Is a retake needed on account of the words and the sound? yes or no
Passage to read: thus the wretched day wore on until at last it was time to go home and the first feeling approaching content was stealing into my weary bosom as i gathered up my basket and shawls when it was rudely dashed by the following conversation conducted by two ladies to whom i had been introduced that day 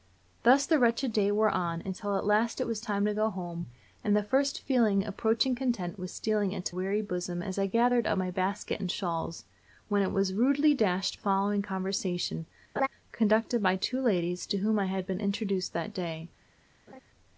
yes